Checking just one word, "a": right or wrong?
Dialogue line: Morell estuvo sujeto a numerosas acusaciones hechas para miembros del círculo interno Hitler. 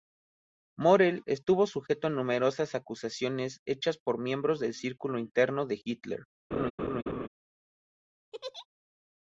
right